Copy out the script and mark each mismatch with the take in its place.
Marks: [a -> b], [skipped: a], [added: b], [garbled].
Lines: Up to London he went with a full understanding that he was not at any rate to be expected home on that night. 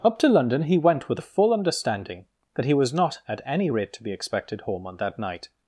Up to London he went with a full understanding that he was not at any rate to be expected home on that night.